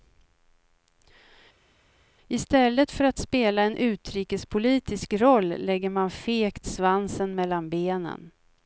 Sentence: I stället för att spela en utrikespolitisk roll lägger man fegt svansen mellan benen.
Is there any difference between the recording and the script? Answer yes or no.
no